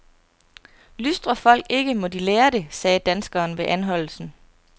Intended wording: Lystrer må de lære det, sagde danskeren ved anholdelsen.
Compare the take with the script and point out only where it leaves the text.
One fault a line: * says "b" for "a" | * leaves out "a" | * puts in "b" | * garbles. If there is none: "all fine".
* puts in "folk ikke"